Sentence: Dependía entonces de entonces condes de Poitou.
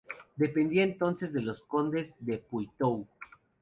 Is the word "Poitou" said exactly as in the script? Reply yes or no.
yes